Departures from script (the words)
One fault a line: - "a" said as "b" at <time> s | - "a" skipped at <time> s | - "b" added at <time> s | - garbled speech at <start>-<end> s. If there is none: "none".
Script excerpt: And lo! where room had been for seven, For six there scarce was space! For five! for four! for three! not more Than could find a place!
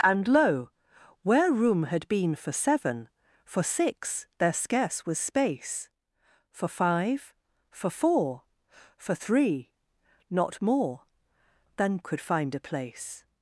none